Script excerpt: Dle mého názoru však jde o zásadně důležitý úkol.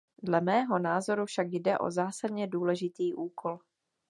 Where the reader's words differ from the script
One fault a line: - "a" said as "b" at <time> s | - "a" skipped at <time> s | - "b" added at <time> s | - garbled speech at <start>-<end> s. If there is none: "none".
none